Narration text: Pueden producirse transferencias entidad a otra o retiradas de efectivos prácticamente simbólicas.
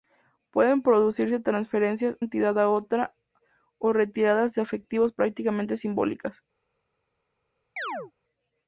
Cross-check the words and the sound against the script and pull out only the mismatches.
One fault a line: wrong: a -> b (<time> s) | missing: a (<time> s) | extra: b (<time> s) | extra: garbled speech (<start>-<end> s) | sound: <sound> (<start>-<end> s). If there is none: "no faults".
sound: chirp (7.8-8.1 s)